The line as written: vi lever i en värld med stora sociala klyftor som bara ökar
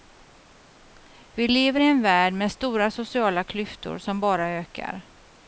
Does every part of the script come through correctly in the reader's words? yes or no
yes